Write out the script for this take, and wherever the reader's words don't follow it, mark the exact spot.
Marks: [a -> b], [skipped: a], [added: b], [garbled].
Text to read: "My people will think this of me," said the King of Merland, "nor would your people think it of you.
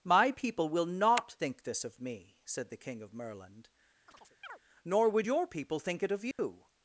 "My people will [added: not] think this of me," said the King of Merland, "nor would your people think it of you.